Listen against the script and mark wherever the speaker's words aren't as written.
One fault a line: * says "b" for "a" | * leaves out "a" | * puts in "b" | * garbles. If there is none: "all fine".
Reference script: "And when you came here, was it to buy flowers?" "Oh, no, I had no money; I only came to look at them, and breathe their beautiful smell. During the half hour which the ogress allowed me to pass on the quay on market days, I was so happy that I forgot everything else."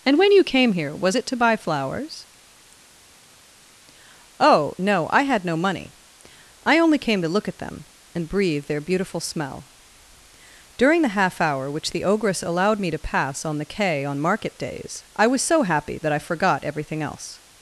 all fine